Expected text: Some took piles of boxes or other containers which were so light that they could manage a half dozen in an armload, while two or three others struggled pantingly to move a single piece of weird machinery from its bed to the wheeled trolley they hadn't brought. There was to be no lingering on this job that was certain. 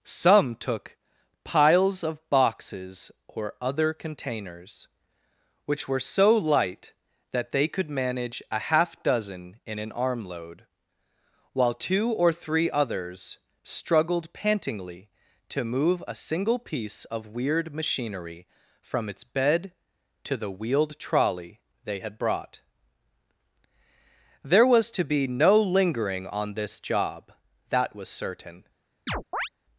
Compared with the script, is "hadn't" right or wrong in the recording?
wrong